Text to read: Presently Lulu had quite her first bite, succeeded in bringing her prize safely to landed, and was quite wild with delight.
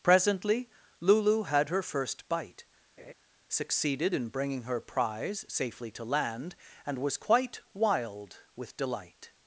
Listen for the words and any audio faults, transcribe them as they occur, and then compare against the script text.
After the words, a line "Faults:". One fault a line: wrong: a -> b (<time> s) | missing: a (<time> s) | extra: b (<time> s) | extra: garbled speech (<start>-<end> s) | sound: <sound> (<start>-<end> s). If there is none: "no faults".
Presently Lulu had her first bite, succeeded in bringing her prize safely to land, and was quite wild with delight.
Faults:
missing: quite (1.7 s)
sound: laugh (3.0-3.1 s)
wrong: landed -> land (6.0 s)